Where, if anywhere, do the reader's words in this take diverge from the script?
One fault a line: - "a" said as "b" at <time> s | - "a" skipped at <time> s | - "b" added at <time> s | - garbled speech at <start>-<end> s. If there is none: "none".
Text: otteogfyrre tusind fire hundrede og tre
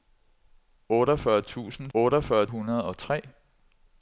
- "fire" said as "otteogfyrre" at 1.9 s